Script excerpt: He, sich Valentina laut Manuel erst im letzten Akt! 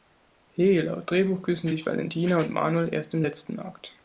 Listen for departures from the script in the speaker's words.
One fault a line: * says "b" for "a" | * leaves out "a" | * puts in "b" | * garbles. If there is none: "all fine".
* puts in "laut Drehbuch küssen"
* says "und" for "laut"